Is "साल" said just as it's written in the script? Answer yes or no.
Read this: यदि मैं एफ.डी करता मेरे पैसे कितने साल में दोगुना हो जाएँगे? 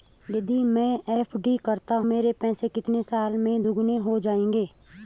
yes